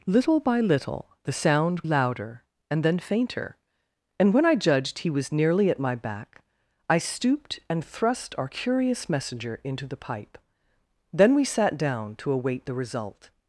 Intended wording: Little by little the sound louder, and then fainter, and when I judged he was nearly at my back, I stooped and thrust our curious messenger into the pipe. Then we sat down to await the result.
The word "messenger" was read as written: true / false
true